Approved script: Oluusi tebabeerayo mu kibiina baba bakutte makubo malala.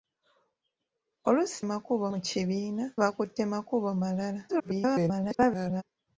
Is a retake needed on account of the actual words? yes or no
yes